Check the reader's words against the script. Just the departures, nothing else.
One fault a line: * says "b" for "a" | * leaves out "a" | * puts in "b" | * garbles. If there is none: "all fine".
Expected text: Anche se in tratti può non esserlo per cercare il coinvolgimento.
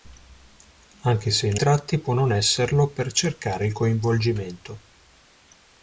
all fine